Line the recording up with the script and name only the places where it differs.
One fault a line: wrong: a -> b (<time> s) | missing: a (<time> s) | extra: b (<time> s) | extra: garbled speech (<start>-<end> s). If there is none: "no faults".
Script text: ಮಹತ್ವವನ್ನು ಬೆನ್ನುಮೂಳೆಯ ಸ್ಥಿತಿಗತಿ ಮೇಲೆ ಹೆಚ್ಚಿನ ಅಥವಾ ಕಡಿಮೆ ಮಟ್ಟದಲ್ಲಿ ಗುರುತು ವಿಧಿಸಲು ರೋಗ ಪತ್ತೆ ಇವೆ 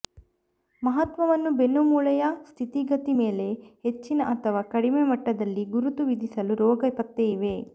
no faults